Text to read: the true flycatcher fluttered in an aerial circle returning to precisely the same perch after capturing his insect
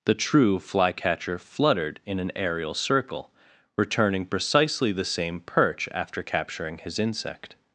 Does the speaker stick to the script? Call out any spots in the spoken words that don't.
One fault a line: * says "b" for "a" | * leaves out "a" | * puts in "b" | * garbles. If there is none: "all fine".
* leaves out "to"